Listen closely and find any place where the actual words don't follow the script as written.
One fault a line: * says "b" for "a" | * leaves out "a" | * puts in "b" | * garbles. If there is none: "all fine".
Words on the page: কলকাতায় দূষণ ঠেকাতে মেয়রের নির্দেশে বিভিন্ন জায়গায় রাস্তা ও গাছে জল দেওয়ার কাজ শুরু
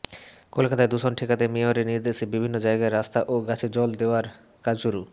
all fine